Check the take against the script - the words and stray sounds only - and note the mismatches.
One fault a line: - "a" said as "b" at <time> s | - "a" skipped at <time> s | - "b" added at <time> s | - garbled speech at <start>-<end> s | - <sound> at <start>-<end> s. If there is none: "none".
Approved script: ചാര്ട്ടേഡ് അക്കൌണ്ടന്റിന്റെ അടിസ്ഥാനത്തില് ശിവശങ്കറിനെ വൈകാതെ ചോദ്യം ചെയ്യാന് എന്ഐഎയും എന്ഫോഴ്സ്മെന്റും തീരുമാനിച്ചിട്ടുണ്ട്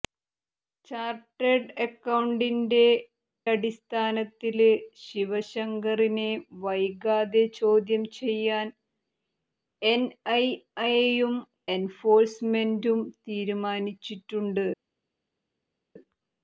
none